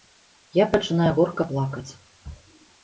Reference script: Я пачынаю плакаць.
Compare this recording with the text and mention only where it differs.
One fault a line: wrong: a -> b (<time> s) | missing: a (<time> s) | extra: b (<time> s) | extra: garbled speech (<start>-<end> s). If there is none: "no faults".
extra: горка (1.2 s)